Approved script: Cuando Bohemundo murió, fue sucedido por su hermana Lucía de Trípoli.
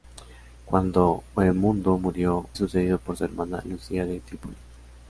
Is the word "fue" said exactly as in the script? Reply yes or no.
no